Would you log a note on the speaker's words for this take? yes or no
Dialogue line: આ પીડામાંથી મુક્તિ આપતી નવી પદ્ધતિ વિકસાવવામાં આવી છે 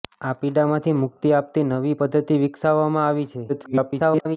yes